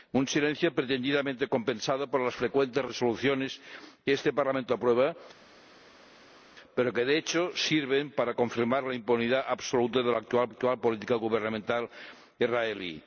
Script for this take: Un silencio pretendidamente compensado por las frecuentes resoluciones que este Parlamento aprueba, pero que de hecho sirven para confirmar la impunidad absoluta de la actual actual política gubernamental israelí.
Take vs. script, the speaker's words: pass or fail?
pass